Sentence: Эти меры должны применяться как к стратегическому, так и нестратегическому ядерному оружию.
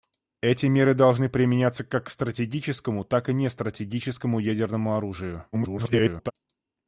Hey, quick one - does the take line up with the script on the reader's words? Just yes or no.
no